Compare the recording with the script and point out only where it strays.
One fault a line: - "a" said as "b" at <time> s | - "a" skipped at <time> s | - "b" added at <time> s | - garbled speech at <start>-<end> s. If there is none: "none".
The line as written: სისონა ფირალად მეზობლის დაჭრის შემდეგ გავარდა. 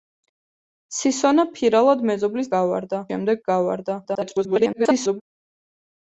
- "დაჭრის" said as "გავარდა" at 2.6 s
- garbled speech at 4.0-5.2 s